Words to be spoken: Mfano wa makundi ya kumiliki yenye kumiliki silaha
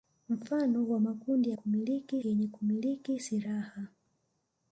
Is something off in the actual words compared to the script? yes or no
no